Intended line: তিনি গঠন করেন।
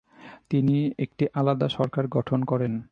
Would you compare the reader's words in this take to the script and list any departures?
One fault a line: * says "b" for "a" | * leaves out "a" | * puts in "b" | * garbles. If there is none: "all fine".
* puts in "একটি আলাদা সরকার"